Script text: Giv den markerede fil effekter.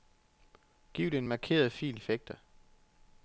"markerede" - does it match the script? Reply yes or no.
yes